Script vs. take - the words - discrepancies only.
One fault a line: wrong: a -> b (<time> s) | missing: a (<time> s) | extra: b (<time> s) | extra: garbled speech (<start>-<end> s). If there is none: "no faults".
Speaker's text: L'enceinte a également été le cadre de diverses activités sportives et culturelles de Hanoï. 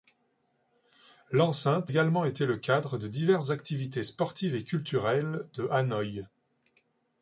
missing: a (1.9 s)